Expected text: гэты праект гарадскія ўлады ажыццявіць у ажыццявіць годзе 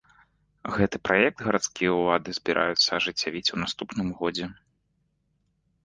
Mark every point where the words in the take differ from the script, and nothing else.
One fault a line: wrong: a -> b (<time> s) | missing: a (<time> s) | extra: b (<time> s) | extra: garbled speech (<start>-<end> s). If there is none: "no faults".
extra: збіраюцца (2.4 s)
wrong: ажыццявіць -> наступным (3.7 s)